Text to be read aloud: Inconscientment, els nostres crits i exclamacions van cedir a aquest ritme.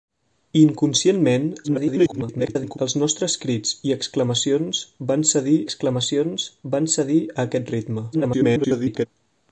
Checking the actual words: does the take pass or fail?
fail